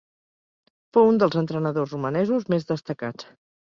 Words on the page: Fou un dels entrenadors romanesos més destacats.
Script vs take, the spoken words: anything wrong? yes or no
no